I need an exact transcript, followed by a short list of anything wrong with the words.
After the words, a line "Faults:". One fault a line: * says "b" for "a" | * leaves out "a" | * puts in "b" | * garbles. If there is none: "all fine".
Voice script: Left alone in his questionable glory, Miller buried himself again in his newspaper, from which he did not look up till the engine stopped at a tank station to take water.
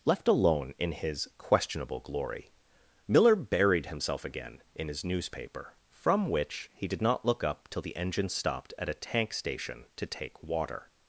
Left alone in his questionable glory, Miller buried himself again in his newspaper, from which he did not look up till the engine stopped at a tank station to take water.
Faults:
all fine